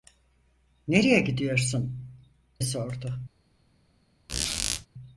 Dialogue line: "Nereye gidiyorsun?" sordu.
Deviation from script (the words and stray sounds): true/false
true